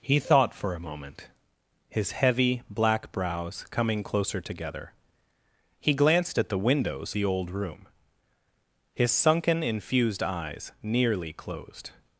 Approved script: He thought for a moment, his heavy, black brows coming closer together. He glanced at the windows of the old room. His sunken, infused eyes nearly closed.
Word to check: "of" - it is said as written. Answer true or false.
false